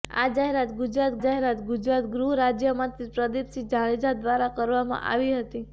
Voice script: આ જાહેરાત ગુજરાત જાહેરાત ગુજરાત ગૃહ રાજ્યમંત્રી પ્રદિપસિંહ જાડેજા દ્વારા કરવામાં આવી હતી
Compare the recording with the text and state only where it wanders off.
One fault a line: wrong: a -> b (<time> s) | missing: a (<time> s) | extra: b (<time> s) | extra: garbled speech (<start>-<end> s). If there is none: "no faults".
no faults